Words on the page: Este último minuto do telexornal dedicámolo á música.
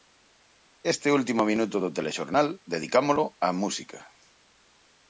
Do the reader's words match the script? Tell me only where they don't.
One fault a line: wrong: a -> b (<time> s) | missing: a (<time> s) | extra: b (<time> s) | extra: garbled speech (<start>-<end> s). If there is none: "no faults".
no faults